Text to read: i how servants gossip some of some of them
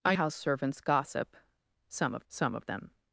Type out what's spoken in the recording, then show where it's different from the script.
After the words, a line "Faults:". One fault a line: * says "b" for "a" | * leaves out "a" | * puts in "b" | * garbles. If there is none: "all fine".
i how servants gossip some of some of them
Faults:
all fine